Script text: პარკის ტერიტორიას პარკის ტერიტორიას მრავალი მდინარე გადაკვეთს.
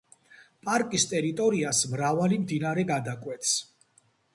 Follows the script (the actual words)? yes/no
no